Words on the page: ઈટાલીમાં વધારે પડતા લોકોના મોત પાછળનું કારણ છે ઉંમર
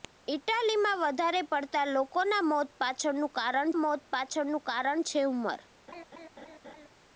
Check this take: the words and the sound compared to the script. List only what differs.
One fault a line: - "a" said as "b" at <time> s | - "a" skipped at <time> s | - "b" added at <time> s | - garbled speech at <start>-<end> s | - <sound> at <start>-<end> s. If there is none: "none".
- "મોત પાછળનું કારણ" added at 3.8 s
- laugh at 5.9-6.9 s